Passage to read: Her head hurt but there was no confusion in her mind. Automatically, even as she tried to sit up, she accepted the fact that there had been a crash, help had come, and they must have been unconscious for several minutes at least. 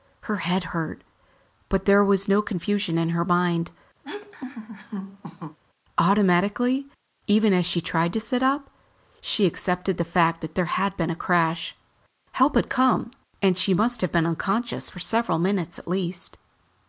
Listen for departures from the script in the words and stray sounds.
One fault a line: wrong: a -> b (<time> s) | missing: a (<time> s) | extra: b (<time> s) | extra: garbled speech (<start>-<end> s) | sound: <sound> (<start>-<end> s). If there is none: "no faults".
sound: laugh (4.0-5.6 s)
wrong: they -> she (13.6 s)